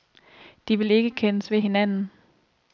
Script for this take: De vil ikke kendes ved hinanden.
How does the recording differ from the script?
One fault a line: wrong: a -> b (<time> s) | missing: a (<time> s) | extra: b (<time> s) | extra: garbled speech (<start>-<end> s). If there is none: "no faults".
no faults